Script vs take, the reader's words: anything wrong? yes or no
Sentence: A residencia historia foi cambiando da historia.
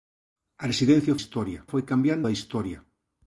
no